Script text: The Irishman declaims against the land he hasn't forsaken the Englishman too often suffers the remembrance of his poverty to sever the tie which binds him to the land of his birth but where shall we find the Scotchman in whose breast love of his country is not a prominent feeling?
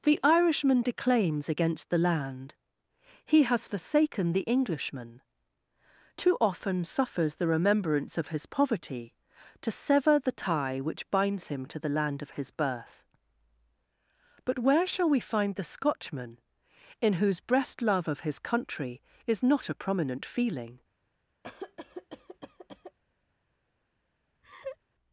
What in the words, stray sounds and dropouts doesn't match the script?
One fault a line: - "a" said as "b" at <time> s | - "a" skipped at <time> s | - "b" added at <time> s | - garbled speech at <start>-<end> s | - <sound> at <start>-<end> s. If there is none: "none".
- "hasn't" said as "has" at 3.4 s
- cough at 21.4-23.0 s
- laugh at 24.4-24.8 s